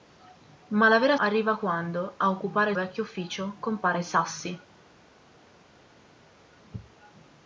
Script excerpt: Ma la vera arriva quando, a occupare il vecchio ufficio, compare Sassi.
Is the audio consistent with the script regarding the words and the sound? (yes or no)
yes